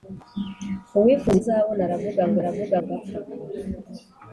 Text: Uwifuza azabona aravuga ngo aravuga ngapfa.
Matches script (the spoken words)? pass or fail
pass